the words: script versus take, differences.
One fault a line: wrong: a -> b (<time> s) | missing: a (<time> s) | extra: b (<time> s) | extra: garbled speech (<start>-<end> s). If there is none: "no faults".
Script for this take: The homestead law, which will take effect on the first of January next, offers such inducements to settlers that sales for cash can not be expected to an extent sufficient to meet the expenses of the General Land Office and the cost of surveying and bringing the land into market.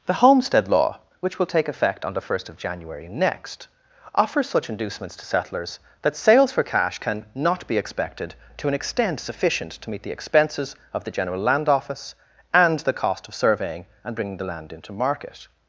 no faults